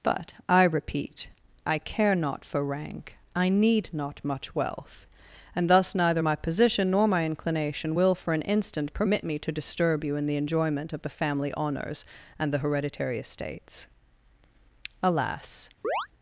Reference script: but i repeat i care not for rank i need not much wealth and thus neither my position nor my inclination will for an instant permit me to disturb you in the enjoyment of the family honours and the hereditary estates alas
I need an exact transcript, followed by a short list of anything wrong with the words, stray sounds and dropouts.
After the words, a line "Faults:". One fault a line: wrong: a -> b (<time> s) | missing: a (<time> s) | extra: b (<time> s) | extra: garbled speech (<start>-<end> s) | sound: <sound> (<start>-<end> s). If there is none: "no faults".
but i repeat i care not for rank i need not much wealth and thus neither my position nor my inclination will for an instant permit me to disturb you in the enjoyment of the family honours and the hereditary estates alas
Faults:
sound: chirp (15.8-16.1 s)